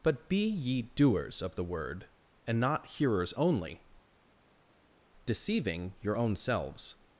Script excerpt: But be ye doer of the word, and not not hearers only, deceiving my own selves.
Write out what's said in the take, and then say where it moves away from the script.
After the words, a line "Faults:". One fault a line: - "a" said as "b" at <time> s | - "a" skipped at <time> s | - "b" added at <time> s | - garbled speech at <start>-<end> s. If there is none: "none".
But be ye doers of the word, and not hearers only, deceiving your own selves.
Faults:
- "doer" said as "doers" at 0.8 s
- "not" skipped at 2.9 s
- "my" said as "your" at 6.0 s